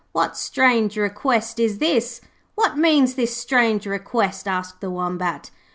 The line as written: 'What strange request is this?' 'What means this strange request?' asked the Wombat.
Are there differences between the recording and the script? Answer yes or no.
no